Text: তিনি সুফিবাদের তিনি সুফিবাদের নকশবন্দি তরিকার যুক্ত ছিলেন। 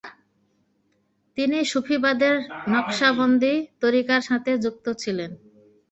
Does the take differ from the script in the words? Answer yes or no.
yes